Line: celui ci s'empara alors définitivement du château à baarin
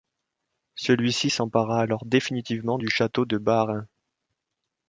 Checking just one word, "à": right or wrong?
wrong